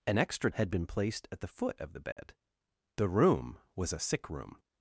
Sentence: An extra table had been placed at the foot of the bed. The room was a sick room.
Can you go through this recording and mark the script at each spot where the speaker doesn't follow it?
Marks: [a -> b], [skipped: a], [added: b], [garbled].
An extra [skipped: table] had been placed at the foot of the bed. The room was a sick room.